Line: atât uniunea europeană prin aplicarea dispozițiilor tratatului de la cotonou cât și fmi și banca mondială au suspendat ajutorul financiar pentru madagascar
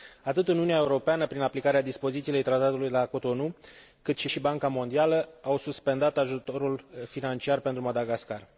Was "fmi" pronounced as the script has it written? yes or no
no